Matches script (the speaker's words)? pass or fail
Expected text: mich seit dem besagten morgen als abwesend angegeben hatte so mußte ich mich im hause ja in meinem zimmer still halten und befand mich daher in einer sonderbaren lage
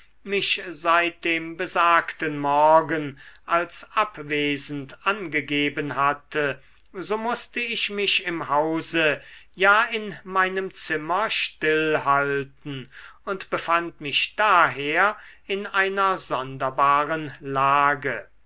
pass